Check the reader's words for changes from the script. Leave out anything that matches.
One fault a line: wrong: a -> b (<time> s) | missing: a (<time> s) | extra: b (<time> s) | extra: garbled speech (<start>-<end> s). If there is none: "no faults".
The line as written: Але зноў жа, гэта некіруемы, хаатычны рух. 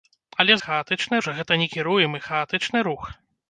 wrong: зноў -> хаатычны (0.6 s)